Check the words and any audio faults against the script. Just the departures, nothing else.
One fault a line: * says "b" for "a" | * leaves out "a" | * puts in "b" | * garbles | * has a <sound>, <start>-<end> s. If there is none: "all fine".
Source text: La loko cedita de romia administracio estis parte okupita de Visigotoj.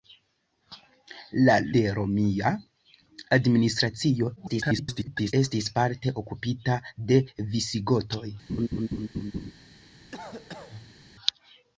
* leaves out "loko cedita"
* garbles
* has a laugh, 8.5-9.5 s
* has a cough, 10.1-11.0 s